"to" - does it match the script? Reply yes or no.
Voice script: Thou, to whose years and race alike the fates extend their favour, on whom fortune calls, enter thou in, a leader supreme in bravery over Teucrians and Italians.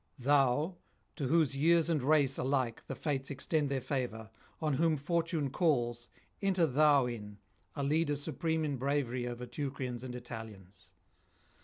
yes